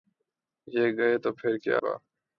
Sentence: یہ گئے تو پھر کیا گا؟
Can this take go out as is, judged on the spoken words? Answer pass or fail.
pass